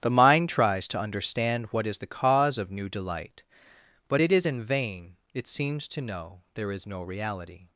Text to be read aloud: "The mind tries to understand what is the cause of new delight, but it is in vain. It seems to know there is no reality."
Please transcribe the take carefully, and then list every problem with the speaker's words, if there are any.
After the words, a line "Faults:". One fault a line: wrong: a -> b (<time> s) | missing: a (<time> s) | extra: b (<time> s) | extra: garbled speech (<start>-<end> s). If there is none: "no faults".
"The mind tries to understand what is the cause of new delight, but it is in vain. It seems to know there is no reality."
Faults:
no faults